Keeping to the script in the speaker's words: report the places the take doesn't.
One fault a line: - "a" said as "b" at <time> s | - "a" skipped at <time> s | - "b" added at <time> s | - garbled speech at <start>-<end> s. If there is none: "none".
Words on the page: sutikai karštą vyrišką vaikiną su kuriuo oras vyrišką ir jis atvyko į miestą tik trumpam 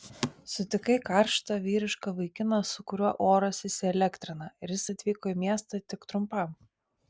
- "vyrišką" said as "įsielektrina" at 3.7 s